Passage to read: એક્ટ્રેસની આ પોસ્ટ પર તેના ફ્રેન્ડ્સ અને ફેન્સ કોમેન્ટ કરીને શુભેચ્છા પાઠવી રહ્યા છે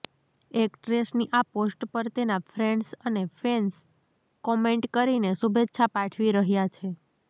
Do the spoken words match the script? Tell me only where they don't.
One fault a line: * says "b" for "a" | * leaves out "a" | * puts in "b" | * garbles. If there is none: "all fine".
all fine